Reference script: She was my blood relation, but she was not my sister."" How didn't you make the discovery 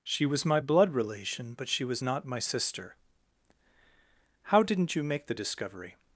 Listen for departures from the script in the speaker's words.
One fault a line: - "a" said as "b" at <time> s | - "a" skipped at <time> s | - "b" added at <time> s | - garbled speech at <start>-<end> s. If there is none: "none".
none